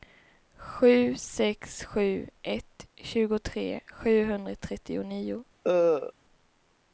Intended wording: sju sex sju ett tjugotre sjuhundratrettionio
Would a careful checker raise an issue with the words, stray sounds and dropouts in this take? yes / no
yes